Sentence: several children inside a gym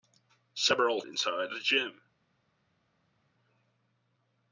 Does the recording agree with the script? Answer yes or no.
no